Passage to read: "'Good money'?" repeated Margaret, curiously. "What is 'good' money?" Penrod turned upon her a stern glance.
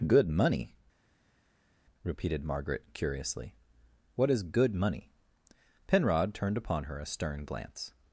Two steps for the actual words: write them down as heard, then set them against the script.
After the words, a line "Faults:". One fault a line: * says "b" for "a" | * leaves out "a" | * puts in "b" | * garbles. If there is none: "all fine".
"'Good money'?" repeated Margaret, curiously. "What is 'good' money?" Penrod turned upon her a stern glance.
Faults:
all fine